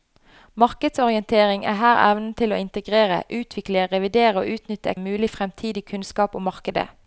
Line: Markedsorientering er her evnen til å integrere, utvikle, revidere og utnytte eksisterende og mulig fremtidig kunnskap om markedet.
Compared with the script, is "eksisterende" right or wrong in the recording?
wrong